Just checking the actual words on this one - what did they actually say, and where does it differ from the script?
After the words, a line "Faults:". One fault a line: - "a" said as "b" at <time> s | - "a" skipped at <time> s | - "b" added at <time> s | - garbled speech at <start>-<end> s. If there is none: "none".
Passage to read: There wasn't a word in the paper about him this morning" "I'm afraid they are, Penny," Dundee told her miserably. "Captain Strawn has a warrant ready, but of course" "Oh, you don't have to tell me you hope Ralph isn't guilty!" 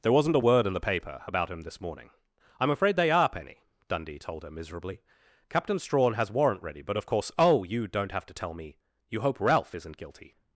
There wasn't a word in the paper about him this morning" "I'm afraid they are, Penny," Dundee told her miserably. "Captain Strawn has warrant ready, but of course" "Oh, you don't have to tell me you hope Ralph isn't guilty!"
Faults:
- "a" skipped at 6.3 s